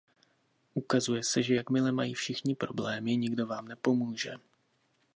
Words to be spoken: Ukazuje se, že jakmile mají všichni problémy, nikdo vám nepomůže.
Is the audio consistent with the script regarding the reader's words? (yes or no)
yes